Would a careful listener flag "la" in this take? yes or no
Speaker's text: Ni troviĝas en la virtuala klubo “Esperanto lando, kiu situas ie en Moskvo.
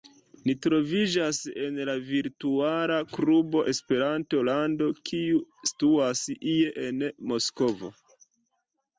no